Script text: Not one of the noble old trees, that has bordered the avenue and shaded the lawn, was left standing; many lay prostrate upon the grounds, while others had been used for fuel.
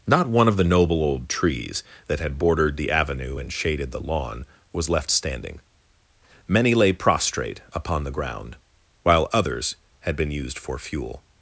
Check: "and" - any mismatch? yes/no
no